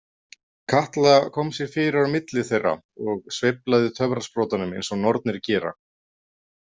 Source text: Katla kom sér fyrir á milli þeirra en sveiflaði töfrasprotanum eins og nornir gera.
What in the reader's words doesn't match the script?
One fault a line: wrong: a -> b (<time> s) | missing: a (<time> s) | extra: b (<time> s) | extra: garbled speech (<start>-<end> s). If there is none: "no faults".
wrong: en -> og (3.1 s)